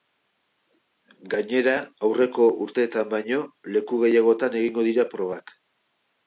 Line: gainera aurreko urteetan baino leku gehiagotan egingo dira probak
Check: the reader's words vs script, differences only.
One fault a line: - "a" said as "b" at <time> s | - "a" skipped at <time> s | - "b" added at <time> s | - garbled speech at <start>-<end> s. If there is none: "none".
none